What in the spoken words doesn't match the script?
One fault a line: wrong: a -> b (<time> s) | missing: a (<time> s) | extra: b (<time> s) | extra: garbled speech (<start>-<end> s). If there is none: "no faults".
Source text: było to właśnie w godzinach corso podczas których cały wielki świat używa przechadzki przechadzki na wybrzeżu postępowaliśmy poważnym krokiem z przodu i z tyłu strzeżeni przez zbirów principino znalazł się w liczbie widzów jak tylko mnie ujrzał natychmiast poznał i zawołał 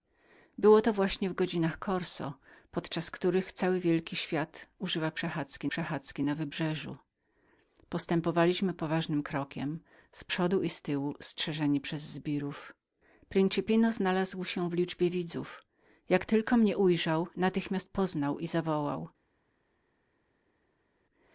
no faults